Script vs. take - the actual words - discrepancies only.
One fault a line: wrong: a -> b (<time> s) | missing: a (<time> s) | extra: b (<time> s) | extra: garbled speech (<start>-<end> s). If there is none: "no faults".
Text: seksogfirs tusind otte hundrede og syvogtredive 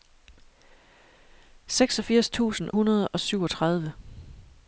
missing: otte (2.7 s)